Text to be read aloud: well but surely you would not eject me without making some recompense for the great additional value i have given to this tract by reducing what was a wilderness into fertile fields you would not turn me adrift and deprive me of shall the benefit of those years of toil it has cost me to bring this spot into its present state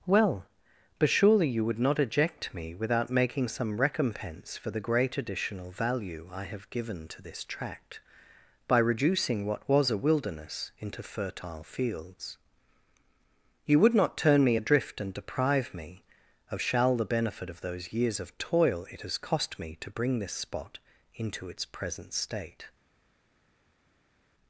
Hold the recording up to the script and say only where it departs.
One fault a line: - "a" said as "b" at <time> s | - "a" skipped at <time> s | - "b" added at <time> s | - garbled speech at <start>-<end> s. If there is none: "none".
none